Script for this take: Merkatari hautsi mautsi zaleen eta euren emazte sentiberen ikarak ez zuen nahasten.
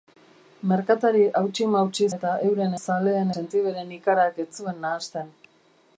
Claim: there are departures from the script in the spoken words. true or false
true